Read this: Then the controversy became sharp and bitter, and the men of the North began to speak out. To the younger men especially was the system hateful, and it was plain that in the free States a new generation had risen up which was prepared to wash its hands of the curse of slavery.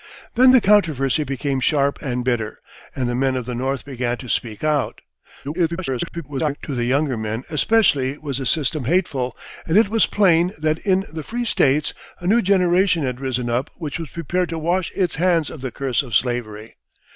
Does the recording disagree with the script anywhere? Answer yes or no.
yes